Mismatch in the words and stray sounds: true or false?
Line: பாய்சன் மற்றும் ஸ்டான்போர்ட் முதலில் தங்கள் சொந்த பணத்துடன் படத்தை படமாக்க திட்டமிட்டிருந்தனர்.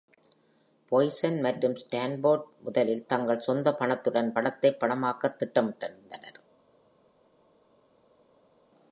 false